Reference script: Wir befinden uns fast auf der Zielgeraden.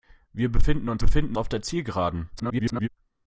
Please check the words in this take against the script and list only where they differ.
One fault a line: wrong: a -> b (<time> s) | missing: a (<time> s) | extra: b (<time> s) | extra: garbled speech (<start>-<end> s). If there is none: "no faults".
wrong: fast -> befinden (1.0 s)
extra: garbled speech (2.4-2.9 s)